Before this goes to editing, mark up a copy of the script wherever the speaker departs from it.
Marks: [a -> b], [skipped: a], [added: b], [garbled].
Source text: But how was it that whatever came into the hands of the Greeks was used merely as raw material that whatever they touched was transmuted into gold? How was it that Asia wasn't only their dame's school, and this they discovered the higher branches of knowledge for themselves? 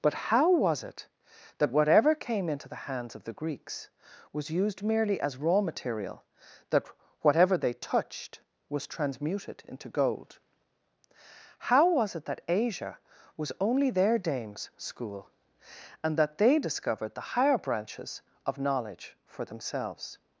But how was it that whatever came into the hands of the Greeks was used merely as raw material that whatever they touched was transmuted into gold? How was it that Asia [wasn't -> was] only their dame's school, and [this -> that] they discovered the higher branches of knowledge for themselves?